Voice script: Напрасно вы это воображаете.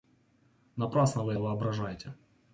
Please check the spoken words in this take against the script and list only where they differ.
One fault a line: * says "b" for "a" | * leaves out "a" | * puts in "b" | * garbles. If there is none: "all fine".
* leaves out "это"